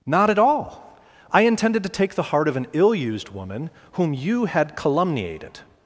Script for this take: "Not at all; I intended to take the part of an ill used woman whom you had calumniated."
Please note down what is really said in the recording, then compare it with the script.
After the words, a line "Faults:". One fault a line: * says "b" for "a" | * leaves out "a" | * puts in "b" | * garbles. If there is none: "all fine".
"Not at all; I intended to take the heart of an ill used woman whom you had calumniated."
Faults:
* says "heart" for "part"